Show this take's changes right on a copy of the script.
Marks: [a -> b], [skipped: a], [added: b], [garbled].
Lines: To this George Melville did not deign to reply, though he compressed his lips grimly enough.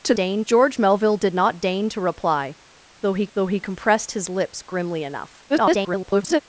To [this -> deign] George Melville did not deign to reply, though he [added: though he] compressed his lips grimly enough. [garbled]